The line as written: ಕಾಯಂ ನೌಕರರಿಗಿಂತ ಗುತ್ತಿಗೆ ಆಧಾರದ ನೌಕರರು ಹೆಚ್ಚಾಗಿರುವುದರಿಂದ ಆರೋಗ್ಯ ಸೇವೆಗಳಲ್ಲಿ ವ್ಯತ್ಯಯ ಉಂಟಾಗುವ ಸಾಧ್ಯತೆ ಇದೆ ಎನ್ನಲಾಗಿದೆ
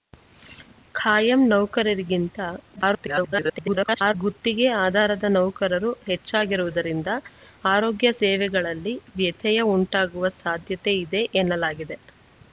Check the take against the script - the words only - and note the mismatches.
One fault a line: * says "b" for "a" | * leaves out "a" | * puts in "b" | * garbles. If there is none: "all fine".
* garbles